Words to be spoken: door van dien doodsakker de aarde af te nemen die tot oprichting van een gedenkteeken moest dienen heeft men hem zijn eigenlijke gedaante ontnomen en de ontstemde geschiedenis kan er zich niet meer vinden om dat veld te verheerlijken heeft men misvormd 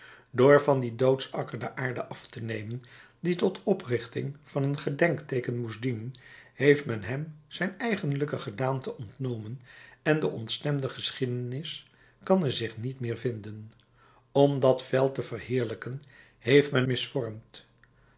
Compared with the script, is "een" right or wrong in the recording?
right